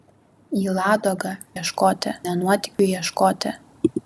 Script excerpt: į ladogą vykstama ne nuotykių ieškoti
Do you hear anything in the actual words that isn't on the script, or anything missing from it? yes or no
yes